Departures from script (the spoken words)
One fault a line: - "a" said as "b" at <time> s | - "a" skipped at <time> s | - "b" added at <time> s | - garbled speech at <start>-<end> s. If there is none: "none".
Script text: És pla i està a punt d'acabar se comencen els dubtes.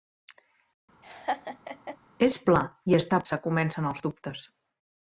- "punt d'acabar" skipped at 3.3 s